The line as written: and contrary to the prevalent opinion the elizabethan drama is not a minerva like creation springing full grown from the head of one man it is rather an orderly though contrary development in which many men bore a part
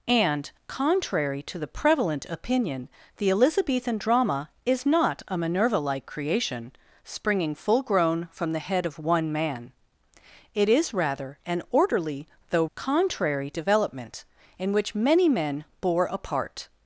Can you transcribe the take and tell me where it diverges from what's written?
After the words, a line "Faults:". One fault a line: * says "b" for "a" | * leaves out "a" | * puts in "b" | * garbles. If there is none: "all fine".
and contrary to the prevalent opinion the elizabethan drama is not a minerva like creation springing full grown from the head of one man it is rather an orderly though contrary development in which many men bore a part
Faults:
all fine